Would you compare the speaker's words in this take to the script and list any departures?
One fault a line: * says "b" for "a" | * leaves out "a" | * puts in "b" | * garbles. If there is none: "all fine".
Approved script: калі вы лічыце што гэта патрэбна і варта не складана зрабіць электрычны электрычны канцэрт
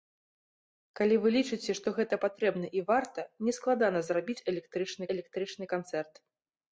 all fine